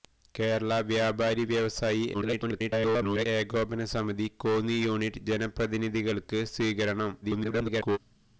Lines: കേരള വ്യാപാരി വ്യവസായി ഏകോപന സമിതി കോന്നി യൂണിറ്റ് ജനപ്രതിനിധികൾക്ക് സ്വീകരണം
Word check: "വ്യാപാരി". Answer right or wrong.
right